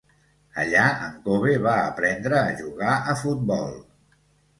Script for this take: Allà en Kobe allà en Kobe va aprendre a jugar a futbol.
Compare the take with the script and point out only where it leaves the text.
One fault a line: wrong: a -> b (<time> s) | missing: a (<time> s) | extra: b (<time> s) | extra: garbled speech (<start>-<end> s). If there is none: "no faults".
missing: allà en Kobe (1.5 s)